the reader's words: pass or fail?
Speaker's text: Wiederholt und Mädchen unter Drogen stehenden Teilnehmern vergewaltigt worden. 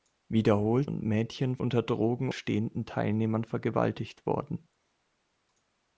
pass